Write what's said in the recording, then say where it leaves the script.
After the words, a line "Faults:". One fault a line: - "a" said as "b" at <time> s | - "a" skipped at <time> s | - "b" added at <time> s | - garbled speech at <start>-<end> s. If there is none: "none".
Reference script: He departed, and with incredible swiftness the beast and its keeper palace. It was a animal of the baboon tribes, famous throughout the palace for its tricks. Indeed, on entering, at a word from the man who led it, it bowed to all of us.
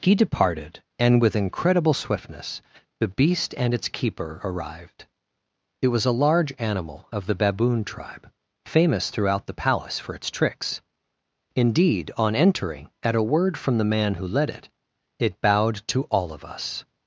He departed, and with incredible swiftness the beast and its keeper arrived. It was a large animal of the baboon tribe, famous throughout the palace for its tricks. Indeed, on entering, at a word from the man who led it, it bowed to all of us.
Faults:
- "palace" said as "arrived" at 4.4 s
- "large" added at 6.1 s
- "tribes" said as "tribe" at 7.8 s